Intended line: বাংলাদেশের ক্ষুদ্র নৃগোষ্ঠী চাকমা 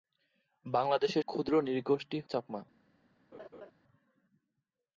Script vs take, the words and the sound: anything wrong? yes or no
yes